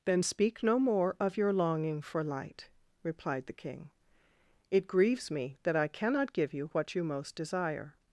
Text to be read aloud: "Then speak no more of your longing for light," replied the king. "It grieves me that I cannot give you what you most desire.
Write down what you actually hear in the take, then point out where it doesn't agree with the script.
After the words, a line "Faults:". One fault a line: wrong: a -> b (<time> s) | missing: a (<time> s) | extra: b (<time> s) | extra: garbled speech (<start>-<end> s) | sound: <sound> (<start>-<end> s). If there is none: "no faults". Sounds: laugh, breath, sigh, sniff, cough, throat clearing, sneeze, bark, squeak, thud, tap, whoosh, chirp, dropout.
"Then speak no more of your longing for light," replied the king. "It grieves me that I cannot give you what you most desire.
Faults:
no faults